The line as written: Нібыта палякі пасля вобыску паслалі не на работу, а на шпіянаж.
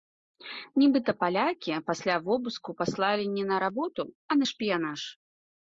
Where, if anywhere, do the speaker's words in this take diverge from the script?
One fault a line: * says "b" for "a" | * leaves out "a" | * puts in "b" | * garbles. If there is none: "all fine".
all fine